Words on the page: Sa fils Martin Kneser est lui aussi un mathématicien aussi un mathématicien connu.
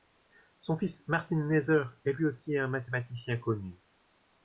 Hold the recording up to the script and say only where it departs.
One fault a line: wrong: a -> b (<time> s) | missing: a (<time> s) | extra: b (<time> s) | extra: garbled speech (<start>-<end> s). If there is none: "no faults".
wrong: Sa -> Son (0.6 s)
missing: aussi un mathématicien (3.4 s)